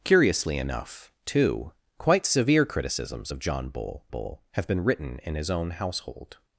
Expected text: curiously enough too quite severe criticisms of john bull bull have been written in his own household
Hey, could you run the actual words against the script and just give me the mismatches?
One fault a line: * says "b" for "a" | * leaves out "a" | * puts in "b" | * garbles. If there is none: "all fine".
all fine